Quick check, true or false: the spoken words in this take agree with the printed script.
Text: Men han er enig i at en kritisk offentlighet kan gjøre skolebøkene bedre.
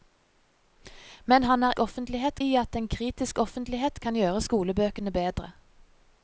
false